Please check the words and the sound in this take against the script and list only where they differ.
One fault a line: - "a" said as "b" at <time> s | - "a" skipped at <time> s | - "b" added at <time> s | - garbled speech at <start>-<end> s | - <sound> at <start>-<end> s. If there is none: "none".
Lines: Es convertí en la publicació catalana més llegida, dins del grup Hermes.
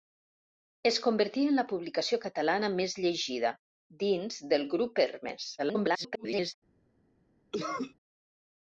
- garbled speech at 5.6-6.5 s
- cough at 7.5-7.9 s